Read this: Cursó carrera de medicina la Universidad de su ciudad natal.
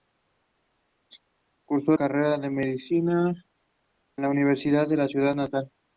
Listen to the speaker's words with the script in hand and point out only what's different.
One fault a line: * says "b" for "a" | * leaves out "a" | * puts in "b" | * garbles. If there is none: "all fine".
all fine